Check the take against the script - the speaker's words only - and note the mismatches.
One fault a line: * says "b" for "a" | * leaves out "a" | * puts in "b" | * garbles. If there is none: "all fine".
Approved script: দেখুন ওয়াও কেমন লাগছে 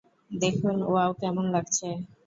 all fine